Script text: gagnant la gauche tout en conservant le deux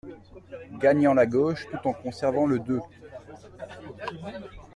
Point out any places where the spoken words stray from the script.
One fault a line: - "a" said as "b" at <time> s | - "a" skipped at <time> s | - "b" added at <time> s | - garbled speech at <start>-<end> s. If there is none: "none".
none